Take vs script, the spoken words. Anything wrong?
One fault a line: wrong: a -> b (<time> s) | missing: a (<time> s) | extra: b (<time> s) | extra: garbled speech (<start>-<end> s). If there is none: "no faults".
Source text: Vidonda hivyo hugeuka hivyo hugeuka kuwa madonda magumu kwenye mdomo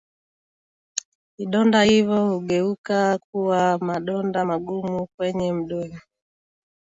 missing: hivyo hugeuka (3.2 s)